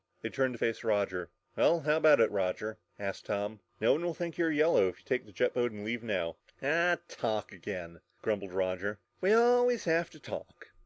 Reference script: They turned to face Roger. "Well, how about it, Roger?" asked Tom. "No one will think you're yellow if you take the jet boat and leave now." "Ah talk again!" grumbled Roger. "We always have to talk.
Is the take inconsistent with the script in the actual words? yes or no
no